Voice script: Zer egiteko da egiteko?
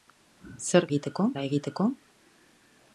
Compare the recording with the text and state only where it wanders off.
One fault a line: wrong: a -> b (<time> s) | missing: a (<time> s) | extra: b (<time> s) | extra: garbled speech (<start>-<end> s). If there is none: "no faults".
no faults